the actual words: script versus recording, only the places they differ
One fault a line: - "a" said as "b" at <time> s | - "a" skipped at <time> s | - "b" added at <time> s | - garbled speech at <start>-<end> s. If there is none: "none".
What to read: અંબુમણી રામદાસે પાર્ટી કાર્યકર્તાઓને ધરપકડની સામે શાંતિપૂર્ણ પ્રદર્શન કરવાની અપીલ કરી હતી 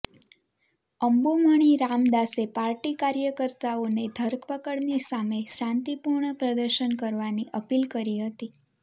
none